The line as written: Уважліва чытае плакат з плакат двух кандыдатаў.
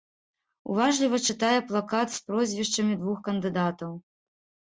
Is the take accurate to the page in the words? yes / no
no